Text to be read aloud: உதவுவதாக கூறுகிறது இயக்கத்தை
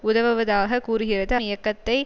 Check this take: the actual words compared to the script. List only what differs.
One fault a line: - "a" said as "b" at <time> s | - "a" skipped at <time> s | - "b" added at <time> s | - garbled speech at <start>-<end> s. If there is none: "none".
none